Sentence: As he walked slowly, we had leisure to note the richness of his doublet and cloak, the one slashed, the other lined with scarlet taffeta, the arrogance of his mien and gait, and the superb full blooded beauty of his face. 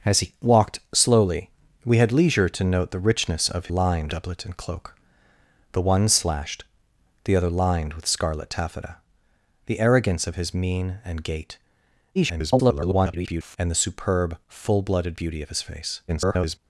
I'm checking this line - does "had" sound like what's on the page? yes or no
yes